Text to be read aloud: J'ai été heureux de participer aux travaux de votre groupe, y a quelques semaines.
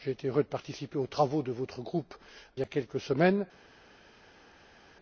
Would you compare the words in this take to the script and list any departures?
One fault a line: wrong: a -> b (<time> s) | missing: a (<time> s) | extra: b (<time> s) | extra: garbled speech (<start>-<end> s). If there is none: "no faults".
no faults